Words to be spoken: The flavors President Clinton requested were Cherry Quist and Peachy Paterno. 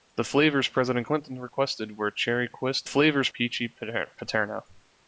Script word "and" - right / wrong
wrong